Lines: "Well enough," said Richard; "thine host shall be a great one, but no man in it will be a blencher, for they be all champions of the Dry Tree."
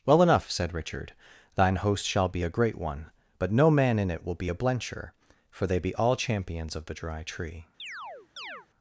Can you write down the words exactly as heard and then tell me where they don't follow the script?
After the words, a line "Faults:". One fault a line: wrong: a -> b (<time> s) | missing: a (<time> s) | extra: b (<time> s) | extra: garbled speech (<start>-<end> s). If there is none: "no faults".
"Well enough," said Richard; "thine host shall be a great one, but no man in it will be a blencher, for they be all champions of the Dry Tree."
Faults:
no faults